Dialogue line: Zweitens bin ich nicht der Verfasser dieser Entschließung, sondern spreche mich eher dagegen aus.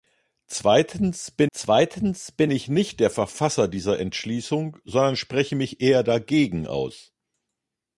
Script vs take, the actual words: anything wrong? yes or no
yes